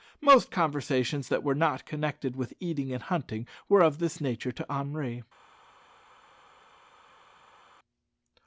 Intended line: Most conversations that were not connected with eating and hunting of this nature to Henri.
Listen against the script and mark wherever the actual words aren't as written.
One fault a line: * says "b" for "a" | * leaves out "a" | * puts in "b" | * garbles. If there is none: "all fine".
* puts in "were"